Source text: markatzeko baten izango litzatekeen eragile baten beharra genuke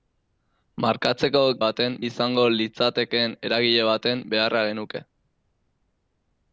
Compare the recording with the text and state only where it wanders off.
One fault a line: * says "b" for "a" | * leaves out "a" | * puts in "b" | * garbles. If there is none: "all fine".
all fine